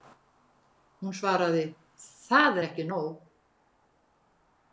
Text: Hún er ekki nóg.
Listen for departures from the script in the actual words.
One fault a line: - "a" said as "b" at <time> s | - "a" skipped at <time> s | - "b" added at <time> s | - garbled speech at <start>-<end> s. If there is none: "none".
- "svaraði Það" added at 1.2 s